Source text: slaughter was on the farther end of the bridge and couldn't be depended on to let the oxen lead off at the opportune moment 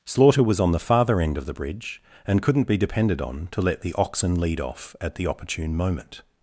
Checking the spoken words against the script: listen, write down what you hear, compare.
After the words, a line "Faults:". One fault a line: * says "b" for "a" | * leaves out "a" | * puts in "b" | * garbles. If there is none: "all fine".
slaughter was on the farther end of the bridge and couldn't be depended on to let the oxen lead off at the opportune moment
Faults:
all fine